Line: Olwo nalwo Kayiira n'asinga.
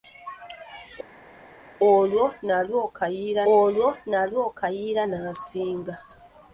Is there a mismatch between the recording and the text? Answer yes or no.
yes